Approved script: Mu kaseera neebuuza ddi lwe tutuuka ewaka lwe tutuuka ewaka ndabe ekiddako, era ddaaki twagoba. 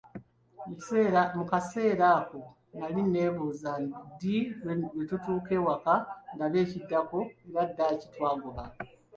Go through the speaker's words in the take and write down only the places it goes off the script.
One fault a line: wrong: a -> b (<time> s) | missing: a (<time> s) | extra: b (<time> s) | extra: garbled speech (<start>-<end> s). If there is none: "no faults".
extra: ako nali (2.2 s)
missing: lwe tutuuka ewaka (5.9 s)